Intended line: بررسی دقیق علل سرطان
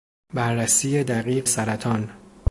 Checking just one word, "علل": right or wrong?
wrong